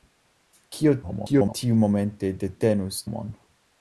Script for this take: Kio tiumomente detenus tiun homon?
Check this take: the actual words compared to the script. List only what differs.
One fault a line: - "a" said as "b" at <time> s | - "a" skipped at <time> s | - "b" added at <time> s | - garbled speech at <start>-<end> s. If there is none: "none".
- garbled speech at 1.0-1.5 s
- "tiun" skipped at 3.0 s